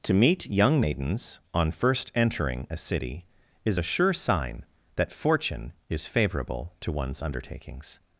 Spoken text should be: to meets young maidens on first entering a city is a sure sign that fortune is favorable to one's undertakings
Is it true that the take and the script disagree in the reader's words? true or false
true